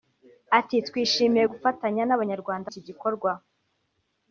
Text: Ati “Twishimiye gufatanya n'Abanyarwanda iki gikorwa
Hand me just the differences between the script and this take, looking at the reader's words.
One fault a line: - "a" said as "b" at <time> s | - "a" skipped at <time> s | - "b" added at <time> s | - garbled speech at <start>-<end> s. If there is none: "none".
none